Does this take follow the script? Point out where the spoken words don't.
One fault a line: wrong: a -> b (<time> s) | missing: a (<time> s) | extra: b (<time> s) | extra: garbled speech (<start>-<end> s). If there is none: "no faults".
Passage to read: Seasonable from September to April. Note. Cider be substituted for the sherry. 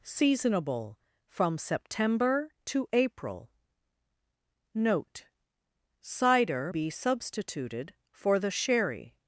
no faults